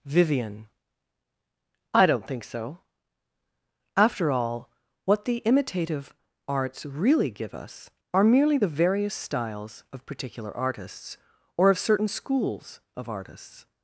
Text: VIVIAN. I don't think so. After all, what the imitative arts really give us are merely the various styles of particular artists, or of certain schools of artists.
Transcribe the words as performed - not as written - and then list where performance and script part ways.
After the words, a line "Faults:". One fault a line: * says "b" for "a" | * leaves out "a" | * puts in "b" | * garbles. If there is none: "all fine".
VIVIAN. I don't think so. After all, what the imitative arts really give us are merely the various styles of particular artists, or of certain schools of artists.
Faults:
all fine